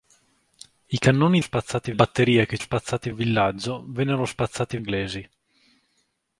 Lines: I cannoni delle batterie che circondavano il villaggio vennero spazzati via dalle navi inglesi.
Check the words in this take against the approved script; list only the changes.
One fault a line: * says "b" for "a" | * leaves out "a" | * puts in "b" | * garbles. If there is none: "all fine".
* says "spazzati" for "delle"
* says "spazzati" for "circondavano"
* leaves out "via dalle navi"